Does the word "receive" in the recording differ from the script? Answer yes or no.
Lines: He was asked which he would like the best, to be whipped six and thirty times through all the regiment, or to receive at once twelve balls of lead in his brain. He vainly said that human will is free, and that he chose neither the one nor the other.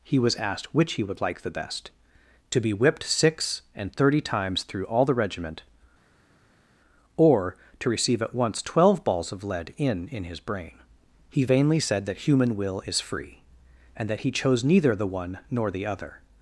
no